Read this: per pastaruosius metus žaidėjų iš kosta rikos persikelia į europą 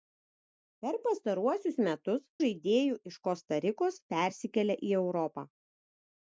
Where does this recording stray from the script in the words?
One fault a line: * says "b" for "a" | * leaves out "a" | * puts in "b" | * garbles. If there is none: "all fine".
all fine